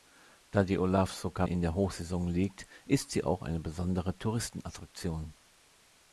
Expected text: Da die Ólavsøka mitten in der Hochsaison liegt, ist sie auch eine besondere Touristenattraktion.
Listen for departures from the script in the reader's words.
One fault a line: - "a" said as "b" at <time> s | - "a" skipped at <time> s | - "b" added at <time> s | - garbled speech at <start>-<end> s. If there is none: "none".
- "mitten" skipped at 1.4 s